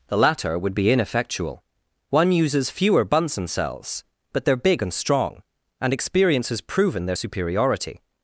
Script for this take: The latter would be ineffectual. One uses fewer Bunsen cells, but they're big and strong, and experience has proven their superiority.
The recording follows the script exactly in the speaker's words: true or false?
true